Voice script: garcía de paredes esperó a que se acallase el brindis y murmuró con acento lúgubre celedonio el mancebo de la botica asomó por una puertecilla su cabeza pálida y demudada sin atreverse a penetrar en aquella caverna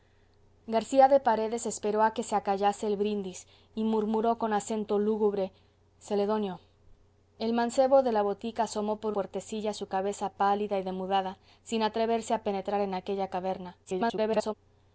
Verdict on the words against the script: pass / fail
fail